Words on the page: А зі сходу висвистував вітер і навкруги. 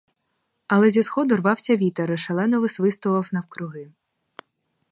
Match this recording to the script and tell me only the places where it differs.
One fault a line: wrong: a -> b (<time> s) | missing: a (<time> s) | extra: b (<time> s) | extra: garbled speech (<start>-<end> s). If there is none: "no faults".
wrong: А -> Але (0.7 s)
wrong: висвистував -> рвався (1.4 s)
extra: шалено висвистував (2.2 s)